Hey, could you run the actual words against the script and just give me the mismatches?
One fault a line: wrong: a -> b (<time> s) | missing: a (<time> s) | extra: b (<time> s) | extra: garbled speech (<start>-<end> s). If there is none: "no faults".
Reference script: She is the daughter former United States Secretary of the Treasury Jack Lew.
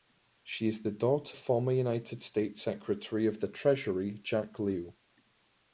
no faults